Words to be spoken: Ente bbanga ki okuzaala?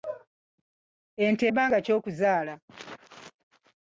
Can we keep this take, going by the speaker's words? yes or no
yes